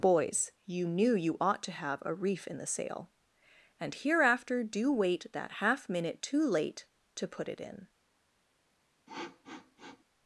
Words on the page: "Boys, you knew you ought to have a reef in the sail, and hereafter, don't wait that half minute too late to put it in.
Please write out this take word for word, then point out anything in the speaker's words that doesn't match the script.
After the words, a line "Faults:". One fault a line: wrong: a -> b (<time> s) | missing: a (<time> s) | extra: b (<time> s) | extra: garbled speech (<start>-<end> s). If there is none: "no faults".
"Boys, you knew you ought to have a reef in the sail, and hereafter, do wait that half minute too late to put it in.
Faults:
wrong: don't -> do (4.6 s)